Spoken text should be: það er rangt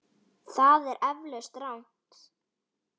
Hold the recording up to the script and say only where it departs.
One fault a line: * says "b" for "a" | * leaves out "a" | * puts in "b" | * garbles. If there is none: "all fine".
* puts in "eflaust"